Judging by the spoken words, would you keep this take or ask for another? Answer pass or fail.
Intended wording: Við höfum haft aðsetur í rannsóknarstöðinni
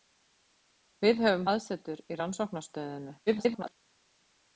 fail